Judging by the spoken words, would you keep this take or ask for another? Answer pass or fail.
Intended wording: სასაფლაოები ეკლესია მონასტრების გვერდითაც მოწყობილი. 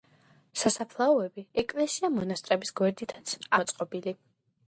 pass